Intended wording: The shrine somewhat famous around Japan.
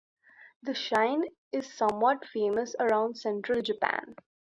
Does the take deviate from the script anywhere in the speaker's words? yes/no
yes